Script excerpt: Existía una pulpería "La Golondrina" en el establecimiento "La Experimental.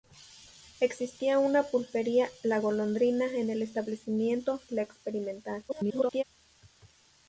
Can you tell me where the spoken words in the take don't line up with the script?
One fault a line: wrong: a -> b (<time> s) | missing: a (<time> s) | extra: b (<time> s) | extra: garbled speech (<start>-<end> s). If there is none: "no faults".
extra: garbled speech (5.7-6.2 s)